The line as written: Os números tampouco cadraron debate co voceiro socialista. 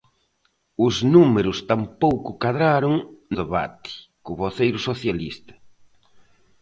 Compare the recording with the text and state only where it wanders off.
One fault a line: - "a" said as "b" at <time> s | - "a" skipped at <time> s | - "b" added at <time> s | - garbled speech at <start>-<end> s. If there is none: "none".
none